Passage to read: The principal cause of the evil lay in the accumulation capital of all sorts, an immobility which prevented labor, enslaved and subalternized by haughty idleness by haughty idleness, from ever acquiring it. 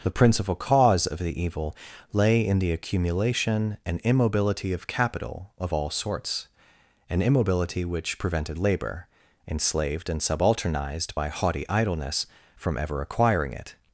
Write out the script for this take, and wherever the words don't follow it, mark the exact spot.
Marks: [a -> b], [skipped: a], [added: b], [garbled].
The principal cause of the evil lay in the accumulation [added: and immobility of] capital of all sorts, an immobility which prevented labor, enslaved and subalternized by haughty idleness [skipped: by haughty idleness,] from ever acquiring it.